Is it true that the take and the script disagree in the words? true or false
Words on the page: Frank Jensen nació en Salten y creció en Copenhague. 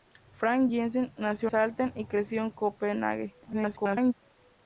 true